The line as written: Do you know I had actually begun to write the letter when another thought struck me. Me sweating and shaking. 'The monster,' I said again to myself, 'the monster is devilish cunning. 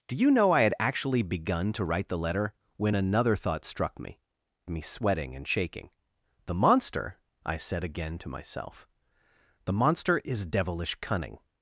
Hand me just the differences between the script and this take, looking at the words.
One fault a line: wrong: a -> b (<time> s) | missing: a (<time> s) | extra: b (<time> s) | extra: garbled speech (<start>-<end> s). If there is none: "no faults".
no faults